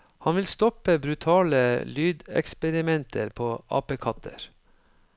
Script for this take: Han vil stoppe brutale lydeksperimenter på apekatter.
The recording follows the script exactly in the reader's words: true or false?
true